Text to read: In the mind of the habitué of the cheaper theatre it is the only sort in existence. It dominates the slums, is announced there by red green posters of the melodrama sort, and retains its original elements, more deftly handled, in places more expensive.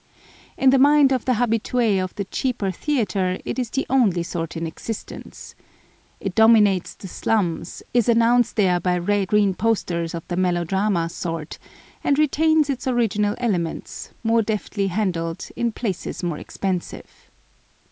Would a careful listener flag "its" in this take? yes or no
no